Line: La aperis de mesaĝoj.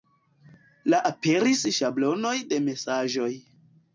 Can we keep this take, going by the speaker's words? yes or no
no